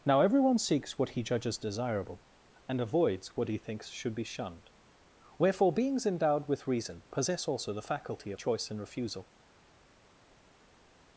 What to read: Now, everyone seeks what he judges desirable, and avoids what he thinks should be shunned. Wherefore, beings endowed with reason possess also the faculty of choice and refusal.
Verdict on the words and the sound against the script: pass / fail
pass